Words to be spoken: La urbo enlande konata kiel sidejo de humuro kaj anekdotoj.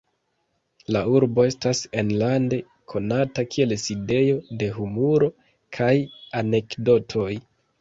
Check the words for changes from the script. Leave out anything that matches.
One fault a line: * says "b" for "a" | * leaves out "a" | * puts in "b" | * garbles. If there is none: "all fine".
* puts in "estas"